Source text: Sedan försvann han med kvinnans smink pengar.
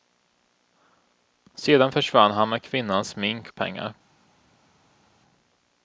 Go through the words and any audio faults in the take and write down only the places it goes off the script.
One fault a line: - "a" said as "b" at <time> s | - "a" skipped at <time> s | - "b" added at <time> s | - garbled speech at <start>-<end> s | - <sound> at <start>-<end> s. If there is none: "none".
none